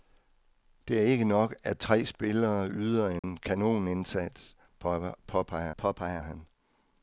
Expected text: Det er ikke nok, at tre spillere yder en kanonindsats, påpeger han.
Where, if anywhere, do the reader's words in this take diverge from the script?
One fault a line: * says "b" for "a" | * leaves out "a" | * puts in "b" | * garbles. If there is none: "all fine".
* puts in "påpeger"